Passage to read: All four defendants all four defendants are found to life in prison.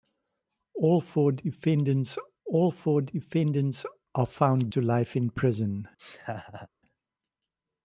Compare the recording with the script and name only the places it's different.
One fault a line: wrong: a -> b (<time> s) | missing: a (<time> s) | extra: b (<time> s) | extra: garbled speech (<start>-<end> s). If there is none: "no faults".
no faults